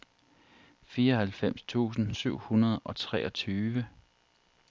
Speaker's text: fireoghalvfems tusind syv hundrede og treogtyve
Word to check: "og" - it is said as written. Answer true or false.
true